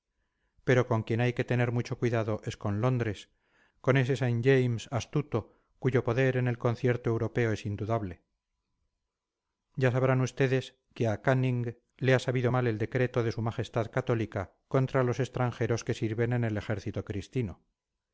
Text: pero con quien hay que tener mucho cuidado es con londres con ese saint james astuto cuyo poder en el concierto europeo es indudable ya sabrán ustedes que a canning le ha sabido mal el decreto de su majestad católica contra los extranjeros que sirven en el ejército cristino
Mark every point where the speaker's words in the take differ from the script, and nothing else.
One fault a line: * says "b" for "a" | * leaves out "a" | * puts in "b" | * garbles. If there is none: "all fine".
all fine